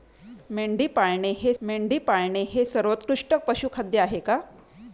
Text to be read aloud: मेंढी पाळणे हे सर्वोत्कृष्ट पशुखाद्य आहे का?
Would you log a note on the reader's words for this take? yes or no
yes